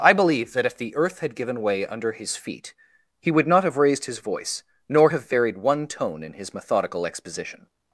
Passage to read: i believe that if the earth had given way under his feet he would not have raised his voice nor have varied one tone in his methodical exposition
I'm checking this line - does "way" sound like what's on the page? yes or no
yes